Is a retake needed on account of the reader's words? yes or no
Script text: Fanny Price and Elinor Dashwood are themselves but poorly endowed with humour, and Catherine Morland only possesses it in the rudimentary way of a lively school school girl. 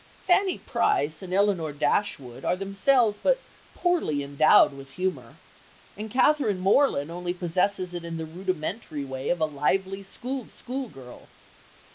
no